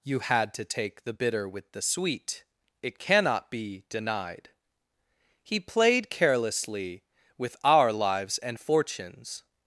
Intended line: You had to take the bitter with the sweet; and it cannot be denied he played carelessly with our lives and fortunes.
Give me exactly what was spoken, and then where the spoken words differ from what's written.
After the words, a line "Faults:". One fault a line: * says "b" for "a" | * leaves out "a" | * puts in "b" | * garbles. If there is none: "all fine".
You had to take the bitter with the sweet; it cannot be denied he played carelessly with our lives and fortunes.
Faults:
* leaves out "and"